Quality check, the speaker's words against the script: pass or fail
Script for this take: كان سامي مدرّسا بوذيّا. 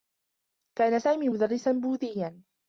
pass